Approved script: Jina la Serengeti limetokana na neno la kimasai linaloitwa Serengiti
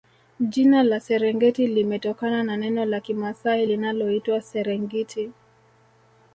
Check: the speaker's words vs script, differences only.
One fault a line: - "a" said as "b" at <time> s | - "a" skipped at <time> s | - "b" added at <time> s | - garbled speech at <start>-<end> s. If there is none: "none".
none